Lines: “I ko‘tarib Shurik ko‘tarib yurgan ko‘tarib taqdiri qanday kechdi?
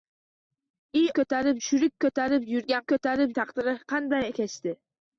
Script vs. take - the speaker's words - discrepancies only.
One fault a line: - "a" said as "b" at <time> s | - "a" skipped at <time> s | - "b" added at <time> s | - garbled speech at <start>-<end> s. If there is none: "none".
none